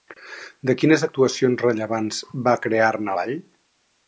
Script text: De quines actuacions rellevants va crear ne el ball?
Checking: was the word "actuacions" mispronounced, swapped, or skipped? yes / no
no